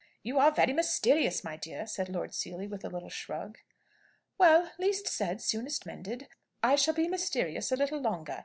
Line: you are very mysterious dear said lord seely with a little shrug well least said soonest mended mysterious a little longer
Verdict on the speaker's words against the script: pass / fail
fail